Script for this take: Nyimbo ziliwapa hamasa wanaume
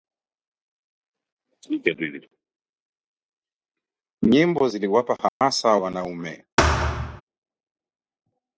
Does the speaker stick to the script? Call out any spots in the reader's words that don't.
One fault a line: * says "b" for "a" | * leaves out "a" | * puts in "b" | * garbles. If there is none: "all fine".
all fine